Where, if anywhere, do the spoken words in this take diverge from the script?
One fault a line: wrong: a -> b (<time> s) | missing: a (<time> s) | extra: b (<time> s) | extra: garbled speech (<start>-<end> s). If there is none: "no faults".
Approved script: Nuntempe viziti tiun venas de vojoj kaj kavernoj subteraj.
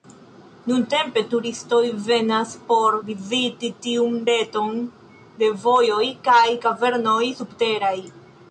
extra: turistoj venas por (1.3 s)
wrong: venas -> reton (4.3 s)